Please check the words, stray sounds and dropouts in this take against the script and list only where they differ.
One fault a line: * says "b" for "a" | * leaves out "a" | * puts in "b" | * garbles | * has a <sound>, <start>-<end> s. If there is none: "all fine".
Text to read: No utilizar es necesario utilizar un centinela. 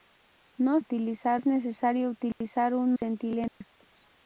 * has a dropout, 2.3-2.4 s
* has a dropout, 3.5-3.6 s